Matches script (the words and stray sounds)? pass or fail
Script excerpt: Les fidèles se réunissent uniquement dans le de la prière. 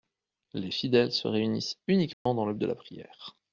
fail